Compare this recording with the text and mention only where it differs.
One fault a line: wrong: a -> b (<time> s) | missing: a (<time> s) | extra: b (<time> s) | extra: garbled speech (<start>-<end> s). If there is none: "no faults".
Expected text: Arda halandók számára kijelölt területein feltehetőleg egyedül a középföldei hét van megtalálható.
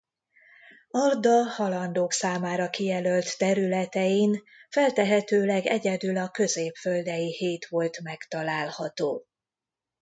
wrong: van -> volt (7.7 s)